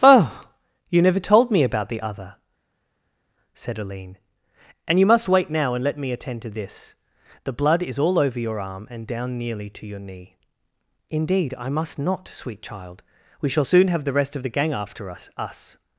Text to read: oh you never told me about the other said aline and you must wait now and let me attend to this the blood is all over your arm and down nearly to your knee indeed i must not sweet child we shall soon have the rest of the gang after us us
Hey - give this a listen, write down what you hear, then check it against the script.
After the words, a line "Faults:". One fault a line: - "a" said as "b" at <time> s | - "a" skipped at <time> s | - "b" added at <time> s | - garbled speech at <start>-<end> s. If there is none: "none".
oh you never told me about the other said aline and you must wait now and let me attend to this the blood is all over your arm and down nearly to your knee indeed i must not sweet child we shall soon have the rest of the gang after us us
Faults:
none